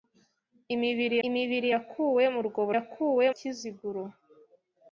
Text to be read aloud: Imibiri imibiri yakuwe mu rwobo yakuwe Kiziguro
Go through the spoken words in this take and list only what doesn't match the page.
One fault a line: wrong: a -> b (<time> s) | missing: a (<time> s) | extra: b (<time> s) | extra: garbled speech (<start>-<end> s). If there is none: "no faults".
no faults